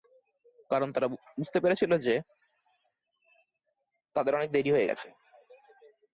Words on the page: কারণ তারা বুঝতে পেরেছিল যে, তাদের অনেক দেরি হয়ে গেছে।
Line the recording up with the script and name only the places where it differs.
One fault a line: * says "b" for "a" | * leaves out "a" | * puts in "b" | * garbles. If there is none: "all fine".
all fine